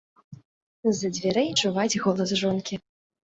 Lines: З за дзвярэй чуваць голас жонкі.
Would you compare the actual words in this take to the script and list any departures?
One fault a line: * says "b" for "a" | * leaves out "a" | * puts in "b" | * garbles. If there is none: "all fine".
all fine